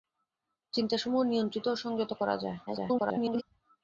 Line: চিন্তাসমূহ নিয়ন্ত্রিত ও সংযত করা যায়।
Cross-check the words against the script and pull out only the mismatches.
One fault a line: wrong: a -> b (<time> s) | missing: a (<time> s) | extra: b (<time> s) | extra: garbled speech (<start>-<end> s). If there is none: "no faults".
extra: garbled speech (2.7-3.4 s)